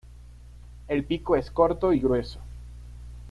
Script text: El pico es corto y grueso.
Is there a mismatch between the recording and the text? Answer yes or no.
no